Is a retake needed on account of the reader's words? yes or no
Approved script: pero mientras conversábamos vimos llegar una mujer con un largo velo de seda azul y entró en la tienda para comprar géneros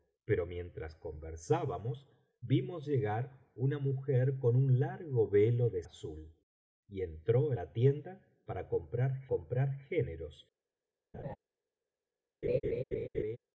yes